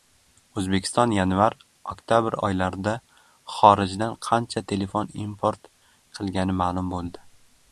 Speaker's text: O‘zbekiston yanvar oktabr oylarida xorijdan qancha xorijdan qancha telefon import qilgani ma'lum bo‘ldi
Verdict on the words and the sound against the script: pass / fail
fail